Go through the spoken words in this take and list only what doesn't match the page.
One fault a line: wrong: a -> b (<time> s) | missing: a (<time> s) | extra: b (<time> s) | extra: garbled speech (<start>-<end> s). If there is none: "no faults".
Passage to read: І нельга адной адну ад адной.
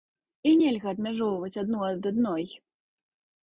wrong: адной -> адмяжоўваць (1.0 s)